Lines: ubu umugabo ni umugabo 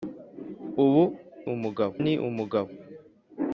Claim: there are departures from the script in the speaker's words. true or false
false